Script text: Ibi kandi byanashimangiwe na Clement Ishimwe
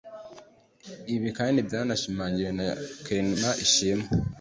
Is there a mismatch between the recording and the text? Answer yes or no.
no